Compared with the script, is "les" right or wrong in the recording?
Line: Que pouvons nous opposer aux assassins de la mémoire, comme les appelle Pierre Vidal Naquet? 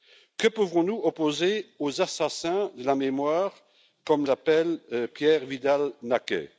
wrong